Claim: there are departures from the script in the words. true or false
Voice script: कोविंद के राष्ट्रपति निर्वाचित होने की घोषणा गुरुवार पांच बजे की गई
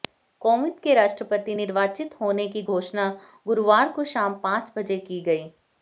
true